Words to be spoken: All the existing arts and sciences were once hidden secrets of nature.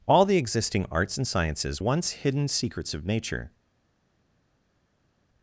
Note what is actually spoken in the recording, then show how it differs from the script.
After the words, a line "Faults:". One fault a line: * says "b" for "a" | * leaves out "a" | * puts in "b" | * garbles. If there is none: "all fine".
All the existing arts and sciences once hidden secrets of nature.
Faults:
* leaves out "were"